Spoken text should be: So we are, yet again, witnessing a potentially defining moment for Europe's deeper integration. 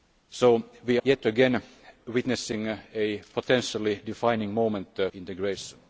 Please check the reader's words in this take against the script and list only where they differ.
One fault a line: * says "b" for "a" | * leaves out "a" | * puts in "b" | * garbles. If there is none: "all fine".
* leaves out "are"
* leaves out "for Europe's deeper"